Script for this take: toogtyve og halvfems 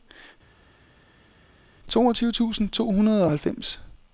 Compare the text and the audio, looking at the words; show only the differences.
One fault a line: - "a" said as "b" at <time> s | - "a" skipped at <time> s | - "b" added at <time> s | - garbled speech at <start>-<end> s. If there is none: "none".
- "tusind to hundrede" added at 2.3 s